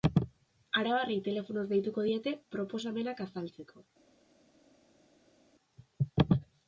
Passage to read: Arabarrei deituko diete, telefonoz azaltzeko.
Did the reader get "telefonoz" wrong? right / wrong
wrong